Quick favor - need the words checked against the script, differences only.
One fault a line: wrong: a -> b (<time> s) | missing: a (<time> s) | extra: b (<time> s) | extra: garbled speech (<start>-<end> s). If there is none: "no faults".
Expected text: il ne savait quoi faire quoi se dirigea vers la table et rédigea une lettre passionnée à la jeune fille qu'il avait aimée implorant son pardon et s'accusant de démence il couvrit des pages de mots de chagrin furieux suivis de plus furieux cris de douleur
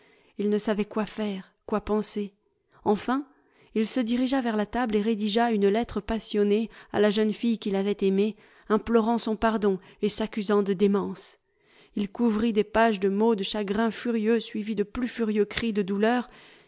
extra: penser enfin il (1.8 s)